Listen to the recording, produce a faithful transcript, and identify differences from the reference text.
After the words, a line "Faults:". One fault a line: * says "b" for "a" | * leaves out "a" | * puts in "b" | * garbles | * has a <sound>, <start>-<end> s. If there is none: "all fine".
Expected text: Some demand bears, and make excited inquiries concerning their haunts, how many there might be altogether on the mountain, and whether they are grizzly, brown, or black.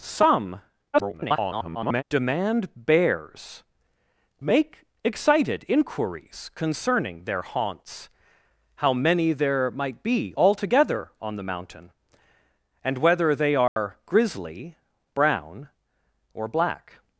Some [garbled] demand bears, make excited inquiries concerning their haunts, how many there might be altogether on the mountain, and whether they are grizzly, brown, or black.
Faults:
* garbles
* leaves out "and"
* has a dropout, 13.7-13.8 s